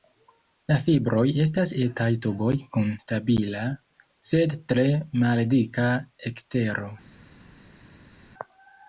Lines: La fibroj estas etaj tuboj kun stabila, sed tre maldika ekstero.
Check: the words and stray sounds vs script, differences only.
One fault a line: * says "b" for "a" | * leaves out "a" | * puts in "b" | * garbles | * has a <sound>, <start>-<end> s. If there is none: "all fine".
all fine